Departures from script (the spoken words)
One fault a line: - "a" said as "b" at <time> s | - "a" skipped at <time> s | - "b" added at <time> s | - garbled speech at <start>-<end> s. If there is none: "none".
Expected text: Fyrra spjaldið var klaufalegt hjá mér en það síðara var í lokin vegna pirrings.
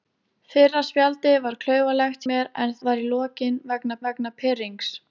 - "hjá" skipped at 2.3 s
- "það síðara" skipped at 2.8 s
- "vegna" added at 4.1 s